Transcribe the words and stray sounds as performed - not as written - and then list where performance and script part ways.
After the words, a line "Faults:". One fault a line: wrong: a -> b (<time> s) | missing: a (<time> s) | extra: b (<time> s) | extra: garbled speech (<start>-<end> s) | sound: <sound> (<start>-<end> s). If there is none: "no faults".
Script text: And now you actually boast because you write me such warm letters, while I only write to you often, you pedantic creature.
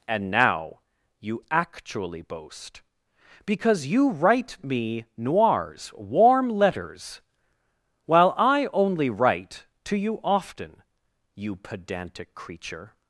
And now you actually boast because you write me noirs warm letters, while I only write to you often, you pedantic creature.
Faults:
wrong: such -> noirs (5.2 s)